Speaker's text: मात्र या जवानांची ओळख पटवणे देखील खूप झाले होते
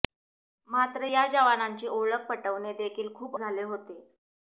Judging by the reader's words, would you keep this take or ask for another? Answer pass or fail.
pass